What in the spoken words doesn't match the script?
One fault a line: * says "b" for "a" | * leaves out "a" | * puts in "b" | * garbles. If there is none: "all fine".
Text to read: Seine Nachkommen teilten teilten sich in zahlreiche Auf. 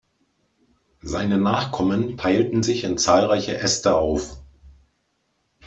* leaves out "teilten"
* puts in "Äste"